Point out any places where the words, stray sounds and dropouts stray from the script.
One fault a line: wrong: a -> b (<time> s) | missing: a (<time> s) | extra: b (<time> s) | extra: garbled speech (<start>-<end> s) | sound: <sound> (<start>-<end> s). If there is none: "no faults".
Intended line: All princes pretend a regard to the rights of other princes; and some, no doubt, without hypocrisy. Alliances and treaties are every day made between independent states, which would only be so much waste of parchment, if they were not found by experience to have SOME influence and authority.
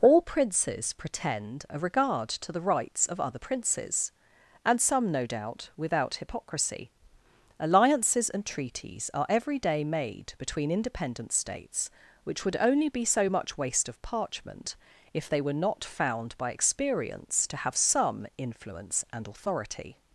no faults